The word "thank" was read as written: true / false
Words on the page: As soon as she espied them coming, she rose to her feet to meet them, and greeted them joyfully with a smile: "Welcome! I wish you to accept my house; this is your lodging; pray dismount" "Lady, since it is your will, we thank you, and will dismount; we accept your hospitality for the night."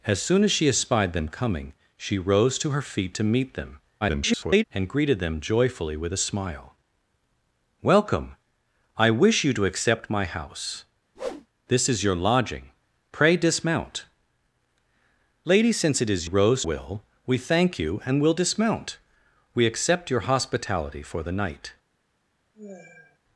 true